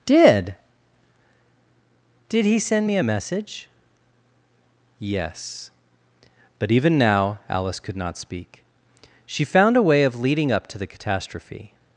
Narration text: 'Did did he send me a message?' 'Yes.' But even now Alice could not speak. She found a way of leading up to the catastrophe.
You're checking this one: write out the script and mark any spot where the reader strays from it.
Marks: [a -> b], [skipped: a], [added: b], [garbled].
'Did did he send me a message?' 'Yes.' But even now Alice could not speak. She found a way of leading up to the catastrophe.